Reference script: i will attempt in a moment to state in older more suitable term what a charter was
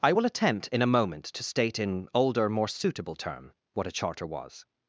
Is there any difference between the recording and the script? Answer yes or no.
no